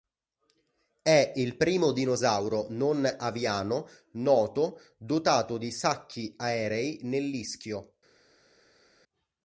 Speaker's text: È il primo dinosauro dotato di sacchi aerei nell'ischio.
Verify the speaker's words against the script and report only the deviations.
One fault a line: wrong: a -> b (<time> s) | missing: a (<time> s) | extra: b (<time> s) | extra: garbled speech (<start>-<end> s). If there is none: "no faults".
extra: non aviano noto (2.7 s)